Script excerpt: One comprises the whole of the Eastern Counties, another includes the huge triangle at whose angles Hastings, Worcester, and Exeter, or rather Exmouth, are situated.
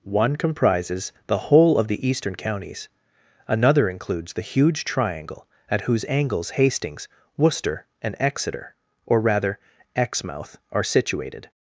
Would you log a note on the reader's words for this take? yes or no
no